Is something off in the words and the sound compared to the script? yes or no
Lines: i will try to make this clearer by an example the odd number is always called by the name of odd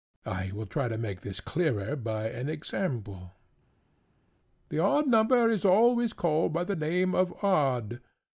no